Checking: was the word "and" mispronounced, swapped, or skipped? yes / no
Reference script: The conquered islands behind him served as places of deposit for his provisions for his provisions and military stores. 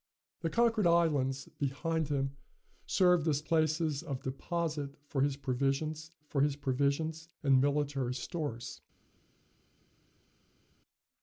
no